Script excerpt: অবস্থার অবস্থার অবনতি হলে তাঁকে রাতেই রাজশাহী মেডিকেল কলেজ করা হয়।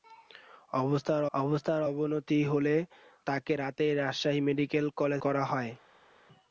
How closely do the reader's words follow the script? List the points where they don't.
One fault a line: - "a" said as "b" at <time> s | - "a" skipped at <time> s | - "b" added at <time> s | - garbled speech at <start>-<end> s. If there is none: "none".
none